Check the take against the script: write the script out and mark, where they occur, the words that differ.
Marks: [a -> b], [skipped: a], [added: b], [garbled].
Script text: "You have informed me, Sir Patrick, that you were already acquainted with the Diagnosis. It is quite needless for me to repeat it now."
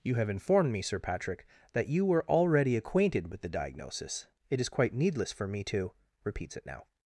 "You have informed me, Sir Patrick, that you were already acquainted with the Diagnosis. It is quite needless for me to [repeat -> repeats] it now."